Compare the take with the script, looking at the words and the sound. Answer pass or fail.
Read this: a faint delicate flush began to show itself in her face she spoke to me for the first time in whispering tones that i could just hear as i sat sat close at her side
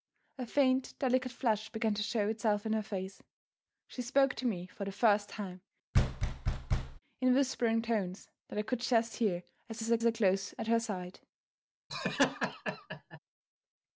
fail